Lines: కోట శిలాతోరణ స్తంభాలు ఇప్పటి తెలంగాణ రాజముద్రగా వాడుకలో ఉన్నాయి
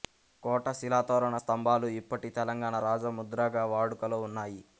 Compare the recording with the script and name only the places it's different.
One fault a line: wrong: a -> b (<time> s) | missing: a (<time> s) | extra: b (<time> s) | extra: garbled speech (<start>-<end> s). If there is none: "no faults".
no faults